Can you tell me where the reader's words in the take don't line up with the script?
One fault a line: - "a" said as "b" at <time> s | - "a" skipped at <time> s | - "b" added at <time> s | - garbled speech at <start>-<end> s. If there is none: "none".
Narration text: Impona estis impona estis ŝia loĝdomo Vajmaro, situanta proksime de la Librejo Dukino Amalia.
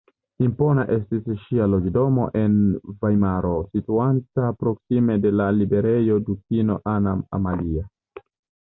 - "impona estis" skipped at 1.3 s
- "en" added at 2.4 s
- "Anna" added at 7.0 s